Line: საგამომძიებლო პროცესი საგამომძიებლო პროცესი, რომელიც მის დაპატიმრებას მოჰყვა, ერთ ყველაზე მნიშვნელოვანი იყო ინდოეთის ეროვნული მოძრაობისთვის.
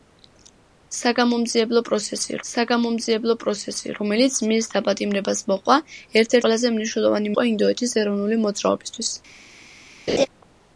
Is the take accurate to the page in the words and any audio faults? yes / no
no